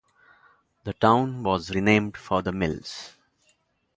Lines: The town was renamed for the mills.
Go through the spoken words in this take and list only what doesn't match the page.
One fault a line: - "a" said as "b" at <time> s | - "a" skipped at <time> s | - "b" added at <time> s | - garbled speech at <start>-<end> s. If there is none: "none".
none